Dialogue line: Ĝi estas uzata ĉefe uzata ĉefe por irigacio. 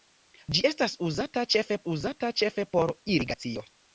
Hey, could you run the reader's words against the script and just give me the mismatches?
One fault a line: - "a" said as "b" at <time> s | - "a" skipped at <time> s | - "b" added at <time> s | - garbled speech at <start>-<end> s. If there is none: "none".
none